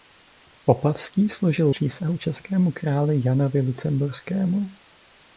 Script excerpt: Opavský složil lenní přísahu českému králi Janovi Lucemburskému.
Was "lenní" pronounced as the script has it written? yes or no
no